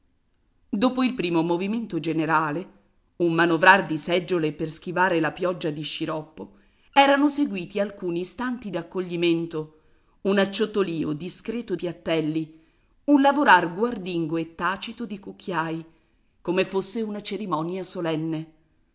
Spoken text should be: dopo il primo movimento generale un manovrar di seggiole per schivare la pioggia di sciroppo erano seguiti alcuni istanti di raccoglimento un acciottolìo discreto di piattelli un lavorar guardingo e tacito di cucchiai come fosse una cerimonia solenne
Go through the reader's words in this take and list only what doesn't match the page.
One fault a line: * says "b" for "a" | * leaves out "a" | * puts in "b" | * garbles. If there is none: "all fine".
* leaves out "di"
* leaves out "di"